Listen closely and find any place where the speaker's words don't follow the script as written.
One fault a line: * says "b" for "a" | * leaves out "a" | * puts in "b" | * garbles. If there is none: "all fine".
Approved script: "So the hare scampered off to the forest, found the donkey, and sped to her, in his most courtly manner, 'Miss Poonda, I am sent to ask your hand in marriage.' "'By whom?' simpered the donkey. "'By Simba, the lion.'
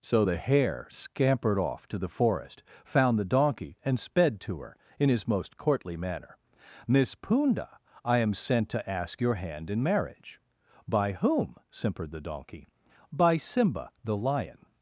all fine